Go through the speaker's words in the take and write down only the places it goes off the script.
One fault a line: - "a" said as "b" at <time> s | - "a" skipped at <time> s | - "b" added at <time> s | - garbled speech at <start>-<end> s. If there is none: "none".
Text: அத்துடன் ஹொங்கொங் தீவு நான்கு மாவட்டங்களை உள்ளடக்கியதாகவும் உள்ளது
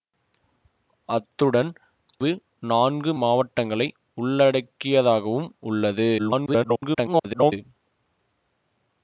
- "ஹொங்கொங்" skipped at 1.7 s
- garbled speech at 6.2-7.5 s